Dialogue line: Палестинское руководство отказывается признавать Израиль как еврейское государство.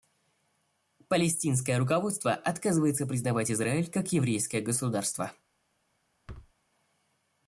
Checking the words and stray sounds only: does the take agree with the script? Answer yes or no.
no